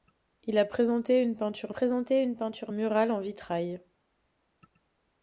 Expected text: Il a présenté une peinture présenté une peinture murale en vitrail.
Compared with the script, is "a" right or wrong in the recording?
right